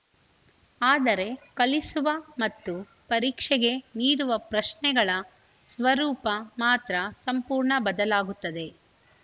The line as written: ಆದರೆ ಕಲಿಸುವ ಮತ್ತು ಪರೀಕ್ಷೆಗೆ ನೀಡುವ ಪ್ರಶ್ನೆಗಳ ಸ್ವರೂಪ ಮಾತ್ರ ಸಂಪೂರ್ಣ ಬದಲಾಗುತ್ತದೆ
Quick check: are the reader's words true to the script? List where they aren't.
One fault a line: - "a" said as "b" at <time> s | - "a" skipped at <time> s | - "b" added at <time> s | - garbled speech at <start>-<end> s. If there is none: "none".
none